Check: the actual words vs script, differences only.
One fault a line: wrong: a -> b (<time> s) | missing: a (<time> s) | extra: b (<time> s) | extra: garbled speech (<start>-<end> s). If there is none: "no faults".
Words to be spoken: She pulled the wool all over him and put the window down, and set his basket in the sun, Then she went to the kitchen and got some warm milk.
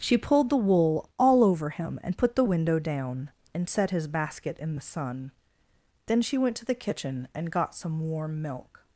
no faults